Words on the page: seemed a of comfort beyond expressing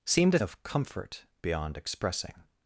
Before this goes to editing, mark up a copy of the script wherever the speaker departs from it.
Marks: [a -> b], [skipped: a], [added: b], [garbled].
seemed a of comfort beyond expressing